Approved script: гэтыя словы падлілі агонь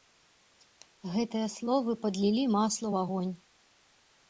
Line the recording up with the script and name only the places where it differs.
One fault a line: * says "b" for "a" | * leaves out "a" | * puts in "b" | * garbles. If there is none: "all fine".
* puts in "масла ў"